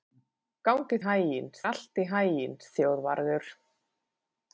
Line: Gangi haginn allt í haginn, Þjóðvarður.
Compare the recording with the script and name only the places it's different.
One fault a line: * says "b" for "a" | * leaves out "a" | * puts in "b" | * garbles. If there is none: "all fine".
all fine